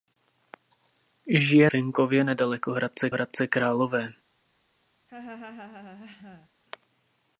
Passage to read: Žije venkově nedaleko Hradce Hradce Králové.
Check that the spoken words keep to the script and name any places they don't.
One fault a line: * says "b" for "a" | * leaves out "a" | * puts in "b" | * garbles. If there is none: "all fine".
all fine